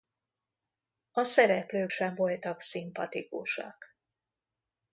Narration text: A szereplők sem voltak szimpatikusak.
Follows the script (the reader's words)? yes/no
yes